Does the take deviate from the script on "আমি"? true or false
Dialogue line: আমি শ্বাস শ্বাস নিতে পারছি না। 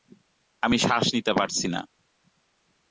false